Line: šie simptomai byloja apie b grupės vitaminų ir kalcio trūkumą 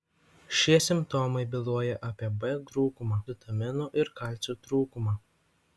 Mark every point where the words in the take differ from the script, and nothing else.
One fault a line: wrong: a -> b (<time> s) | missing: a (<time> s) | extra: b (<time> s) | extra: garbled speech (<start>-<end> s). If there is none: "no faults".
wrong: grupės -> trūkumą (2.7 s)